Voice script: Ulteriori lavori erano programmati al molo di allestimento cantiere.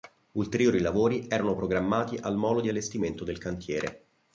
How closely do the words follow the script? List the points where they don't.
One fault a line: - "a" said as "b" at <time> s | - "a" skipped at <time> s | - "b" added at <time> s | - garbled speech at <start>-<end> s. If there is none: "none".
- "del" added at 3.2 s